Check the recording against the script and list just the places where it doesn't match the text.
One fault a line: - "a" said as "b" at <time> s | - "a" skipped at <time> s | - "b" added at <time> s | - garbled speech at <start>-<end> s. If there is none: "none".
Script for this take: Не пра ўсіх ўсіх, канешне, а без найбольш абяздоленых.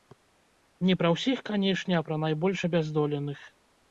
- "ўсіх" skipped at 1.4 s
- "без" said as "пра" at 2.1 s